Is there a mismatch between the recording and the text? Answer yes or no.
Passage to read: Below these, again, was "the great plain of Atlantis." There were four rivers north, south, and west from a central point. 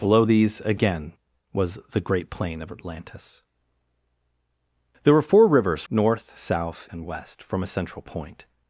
no